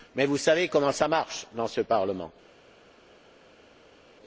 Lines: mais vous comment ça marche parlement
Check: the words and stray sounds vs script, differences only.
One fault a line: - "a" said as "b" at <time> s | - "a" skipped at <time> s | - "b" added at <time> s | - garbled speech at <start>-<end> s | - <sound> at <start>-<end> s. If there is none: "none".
- "savez" added at 0.4 s
- "dans ce" added at 1.5 s